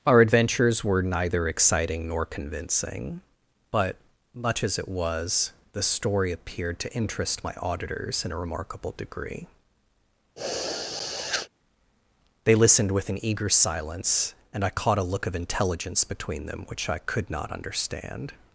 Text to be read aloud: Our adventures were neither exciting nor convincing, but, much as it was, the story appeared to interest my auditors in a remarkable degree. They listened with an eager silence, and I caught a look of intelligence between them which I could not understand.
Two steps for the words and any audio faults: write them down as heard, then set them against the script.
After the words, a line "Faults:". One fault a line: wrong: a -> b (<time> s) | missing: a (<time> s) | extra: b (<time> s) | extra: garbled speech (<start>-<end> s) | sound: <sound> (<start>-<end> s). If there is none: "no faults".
Our adventures were neither exciting nor convincing, but, much as it was, the story appeared to interest my auditors in a remarkable degree. They listened with an eager silence, and I caught a look of intelligence between them which I could not understand.
Faults:
sound: sniff (10.4-11.5 s)